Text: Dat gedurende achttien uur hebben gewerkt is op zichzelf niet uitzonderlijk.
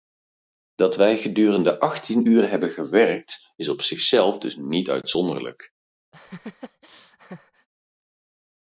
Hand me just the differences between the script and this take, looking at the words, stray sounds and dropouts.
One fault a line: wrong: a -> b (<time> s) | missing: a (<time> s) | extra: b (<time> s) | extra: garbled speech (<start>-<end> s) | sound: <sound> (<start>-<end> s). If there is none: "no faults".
extra: wij (0.9 s)
extra: dus (4.4 s)
sound: laugh (6.1-7.7 s)